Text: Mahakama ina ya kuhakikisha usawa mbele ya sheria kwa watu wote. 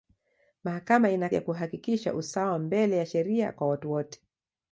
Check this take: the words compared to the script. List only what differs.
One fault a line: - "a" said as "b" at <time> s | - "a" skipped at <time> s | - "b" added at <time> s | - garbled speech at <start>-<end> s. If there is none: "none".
none